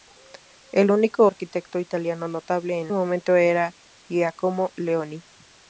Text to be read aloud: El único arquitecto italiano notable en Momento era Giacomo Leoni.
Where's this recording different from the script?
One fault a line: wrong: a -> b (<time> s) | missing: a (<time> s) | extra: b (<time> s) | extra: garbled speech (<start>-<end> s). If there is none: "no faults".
no faults